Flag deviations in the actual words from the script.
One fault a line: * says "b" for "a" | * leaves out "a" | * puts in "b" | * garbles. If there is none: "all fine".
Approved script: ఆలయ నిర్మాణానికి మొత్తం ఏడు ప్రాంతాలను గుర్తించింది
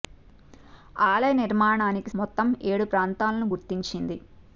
all fine